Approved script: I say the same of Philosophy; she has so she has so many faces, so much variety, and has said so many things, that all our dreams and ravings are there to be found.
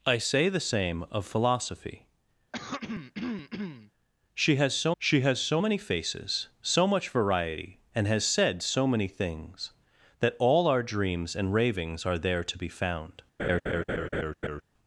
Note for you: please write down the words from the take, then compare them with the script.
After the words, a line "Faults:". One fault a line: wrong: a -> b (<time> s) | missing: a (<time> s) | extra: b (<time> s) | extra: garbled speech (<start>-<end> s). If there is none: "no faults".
I say the same of Philosophy; she has so she has so many faces, so much variety, and has said so many things, that all our dreams and ravings are there to be found.
Faults:
no faults